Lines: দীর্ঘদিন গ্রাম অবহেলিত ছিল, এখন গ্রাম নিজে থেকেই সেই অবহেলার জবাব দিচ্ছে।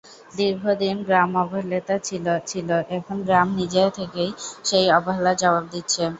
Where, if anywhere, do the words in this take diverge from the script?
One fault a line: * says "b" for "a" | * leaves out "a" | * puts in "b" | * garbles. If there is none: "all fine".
* puts in "ছিল"